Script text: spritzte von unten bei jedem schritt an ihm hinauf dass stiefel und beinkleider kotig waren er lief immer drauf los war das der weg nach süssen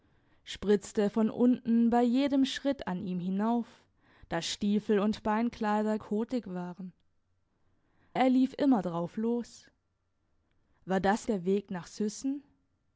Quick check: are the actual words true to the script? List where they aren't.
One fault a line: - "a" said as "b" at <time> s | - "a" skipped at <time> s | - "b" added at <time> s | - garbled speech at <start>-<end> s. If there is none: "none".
none